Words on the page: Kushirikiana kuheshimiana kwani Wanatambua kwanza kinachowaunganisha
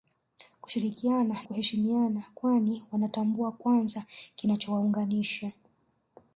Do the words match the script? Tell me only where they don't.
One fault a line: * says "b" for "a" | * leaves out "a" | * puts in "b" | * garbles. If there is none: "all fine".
all fine